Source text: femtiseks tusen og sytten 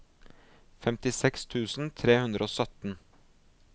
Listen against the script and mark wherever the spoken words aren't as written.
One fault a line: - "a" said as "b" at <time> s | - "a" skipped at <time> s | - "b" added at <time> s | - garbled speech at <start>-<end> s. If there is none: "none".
- "tre hundre" added at 2.0 s